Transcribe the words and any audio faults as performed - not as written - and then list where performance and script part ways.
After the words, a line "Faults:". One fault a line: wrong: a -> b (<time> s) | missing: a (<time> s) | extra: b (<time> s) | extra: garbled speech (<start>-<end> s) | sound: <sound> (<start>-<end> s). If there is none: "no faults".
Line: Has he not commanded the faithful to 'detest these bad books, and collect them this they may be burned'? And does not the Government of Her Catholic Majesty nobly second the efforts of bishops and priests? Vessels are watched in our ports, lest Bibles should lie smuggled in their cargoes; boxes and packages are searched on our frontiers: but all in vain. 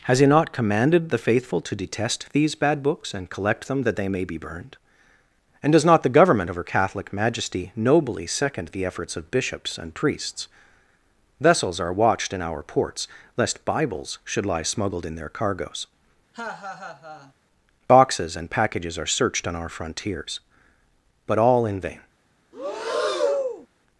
Has he not commanded the faithful to 'detest these bad books, and collect them that they may be burned'? And does not the Government of Her Catholic Majesty nobly second the efforts of bishops and priests? Vessels are watched in our ports, lest Bibles should lie smuggled in their cargoes; boxes and packages are searched on our frontiers: but all in vain.
Faults:
wrong: this -> that (3.8 s)
sound: laugh (16.3-17.3 s)
sound: breath (22.5-23.7 s)